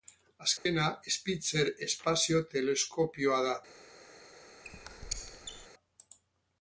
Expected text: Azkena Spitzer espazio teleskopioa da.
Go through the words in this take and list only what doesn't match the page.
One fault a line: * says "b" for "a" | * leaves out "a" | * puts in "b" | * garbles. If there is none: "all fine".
all fine